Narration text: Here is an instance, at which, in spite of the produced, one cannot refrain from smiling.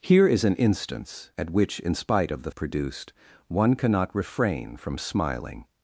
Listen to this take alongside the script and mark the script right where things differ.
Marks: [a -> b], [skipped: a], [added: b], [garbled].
Here is an instance, at which, in spite of the produced, one cannot refrain from smiling.